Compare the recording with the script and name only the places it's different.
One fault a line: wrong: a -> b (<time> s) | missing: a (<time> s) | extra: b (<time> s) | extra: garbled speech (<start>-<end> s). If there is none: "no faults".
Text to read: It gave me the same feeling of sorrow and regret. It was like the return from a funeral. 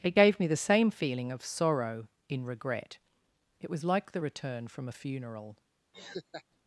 wrong: and -> in (2.3 s)